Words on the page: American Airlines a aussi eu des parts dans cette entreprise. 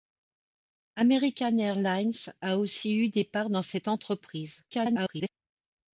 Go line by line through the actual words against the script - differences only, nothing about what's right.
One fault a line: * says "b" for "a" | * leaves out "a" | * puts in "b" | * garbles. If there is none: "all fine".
* garbles